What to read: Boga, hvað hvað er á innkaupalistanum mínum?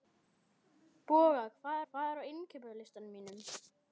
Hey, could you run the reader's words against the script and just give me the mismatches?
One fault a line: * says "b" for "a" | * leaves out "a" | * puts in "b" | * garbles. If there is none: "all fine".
all fine